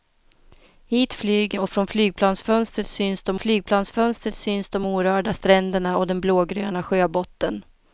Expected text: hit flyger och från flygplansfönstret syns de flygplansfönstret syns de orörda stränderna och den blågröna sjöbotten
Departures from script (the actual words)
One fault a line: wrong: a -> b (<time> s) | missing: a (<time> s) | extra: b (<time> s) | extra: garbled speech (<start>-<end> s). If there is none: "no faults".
no faults